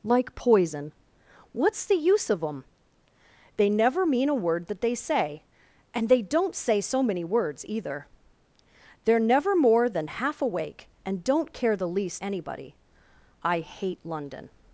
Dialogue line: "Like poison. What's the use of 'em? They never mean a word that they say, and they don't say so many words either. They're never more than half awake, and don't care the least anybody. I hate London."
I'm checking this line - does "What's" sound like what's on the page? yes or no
yes